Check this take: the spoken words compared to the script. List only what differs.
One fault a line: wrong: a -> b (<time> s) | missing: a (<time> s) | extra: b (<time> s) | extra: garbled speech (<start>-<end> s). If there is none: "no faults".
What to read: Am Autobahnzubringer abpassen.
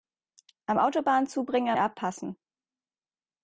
no faults